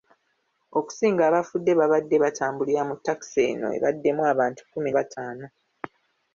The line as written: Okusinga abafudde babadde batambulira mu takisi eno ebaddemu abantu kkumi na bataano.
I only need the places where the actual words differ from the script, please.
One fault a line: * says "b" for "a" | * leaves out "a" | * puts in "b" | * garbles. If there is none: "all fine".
* leaves out "na"